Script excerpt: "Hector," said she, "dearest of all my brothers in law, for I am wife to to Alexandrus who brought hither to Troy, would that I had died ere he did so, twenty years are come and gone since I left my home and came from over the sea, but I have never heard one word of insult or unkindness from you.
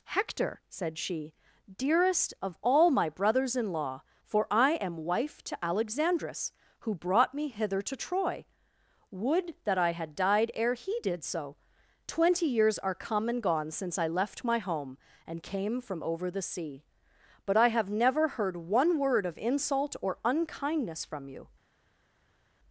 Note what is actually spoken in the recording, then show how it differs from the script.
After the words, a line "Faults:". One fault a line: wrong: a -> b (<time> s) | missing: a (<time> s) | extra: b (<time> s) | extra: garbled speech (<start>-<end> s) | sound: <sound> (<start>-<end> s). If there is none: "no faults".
"Hector," said she, "dearest of all my brothers in law, for I am wife to Alexandrus who brought me hither to Troy, would that I had died ere he did so, twenty years are come and gone since I left my home and came from over the sea, but I have never heard one word of insult or unkindness from you.
Faults:
missing: to (5.6 s)
extra: me (7.3 s)